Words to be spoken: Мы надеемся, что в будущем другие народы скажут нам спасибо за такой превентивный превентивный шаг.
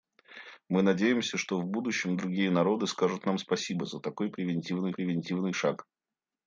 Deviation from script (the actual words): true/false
false